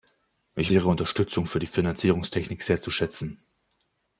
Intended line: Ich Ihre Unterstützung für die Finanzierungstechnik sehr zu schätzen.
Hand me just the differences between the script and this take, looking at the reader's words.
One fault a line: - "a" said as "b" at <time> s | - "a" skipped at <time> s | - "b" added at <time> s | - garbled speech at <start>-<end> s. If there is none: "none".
none